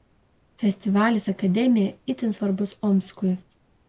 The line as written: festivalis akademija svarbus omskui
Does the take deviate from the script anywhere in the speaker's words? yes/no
yes